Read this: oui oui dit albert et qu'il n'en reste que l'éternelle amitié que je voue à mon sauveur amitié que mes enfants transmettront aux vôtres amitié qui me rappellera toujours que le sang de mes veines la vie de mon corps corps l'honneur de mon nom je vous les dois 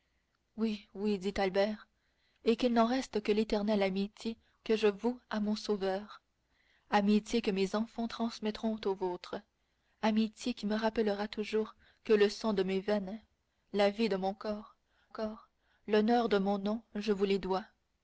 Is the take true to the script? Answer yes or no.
yes